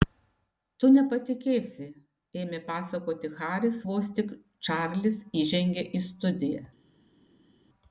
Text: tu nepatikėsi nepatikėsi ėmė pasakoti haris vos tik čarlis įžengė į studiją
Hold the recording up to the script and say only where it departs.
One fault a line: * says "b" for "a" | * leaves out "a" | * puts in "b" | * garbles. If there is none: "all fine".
* leaves out "nepatikėsi"